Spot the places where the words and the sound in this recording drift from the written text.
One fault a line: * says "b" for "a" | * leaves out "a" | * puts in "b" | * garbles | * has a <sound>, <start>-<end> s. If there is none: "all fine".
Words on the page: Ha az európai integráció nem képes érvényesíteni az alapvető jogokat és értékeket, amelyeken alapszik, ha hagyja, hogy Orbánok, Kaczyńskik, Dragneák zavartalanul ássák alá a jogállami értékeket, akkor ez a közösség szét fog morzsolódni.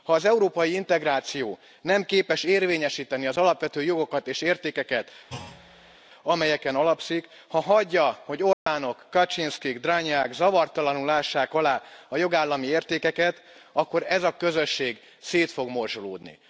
* has a thud, 5.3-6.0 s
* has a dropout, 8.5-8.7 s